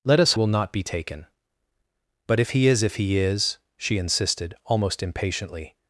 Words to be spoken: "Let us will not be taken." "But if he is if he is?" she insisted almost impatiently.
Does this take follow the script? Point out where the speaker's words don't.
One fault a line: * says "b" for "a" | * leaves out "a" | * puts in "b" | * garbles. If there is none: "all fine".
all fine